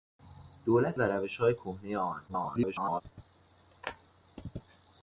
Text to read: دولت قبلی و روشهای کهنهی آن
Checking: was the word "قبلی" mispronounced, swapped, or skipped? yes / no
yes